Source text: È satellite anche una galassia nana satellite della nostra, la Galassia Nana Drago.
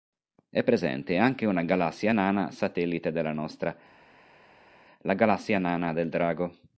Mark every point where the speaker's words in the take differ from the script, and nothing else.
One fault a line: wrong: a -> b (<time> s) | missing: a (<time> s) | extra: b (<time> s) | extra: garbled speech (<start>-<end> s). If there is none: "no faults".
wrong: satellite -> presente (0.6 s)
extra: del (5.9 s)